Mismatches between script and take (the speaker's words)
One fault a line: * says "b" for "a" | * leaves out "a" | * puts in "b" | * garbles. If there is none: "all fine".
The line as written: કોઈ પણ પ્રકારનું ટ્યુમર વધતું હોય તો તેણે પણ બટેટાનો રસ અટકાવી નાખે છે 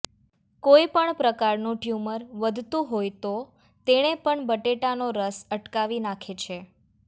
all fine